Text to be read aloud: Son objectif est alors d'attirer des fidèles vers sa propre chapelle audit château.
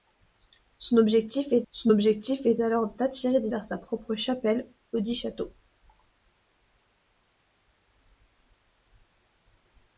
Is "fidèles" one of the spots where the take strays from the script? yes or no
yes